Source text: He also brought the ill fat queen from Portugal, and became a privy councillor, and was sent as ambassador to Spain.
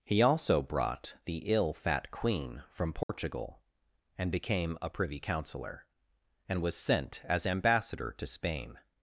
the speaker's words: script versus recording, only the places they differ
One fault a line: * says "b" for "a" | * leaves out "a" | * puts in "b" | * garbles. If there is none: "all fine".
all fine